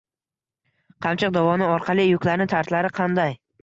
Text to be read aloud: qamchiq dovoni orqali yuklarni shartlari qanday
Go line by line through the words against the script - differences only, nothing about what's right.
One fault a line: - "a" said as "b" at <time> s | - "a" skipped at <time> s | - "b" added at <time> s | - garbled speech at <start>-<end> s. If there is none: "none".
none